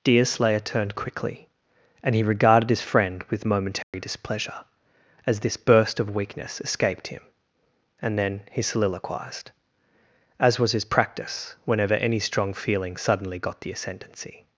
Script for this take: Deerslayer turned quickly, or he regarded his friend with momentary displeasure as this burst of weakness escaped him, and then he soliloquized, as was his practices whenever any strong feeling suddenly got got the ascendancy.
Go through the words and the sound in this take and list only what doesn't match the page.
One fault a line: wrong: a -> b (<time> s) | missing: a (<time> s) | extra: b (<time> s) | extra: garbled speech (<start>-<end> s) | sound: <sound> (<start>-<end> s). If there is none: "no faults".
wrong: or -> and (2.0 s)
sound: dropout (3.8-3.9 s)
wrong: practices -> practice (10.8 s)
missing: got (13.6 s)